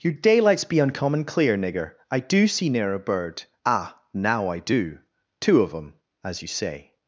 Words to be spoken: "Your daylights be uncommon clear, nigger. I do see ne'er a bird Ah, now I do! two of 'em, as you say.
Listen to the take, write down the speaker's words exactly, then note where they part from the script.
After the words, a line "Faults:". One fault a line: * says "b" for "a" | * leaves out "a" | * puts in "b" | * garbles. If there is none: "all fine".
"Your daylights be uncommon clear, nigger. I do see ne'er a bird Ah, now I do! two of 'em, as you say.
Faults:
all fine